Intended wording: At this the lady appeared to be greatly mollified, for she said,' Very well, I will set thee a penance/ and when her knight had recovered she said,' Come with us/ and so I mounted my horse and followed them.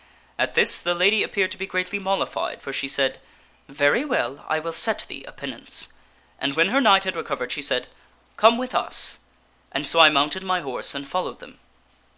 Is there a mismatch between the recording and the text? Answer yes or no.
no